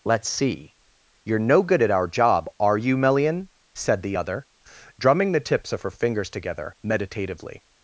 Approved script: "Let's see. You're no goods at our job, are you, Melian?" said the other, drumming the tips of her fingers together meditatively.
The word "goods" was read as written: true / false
false